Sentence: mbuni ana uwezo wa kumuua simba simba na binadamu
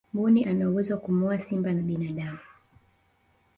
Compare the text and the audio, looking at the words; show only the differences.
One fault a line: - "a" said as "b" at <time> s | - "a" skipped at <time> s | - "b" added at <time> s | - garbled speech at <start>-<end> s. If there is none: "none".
- "simba" skipped at 1.7 s